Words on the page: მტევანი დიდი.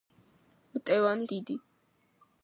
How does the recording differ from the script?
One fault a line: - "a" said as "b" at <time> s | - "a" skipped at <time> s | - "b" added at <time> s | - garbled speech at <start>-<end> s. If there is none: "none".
none